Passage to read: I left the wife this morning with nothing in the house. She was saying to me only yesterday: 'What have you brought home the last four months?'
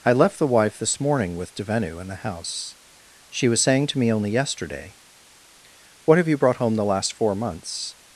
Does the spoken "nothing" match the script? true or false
false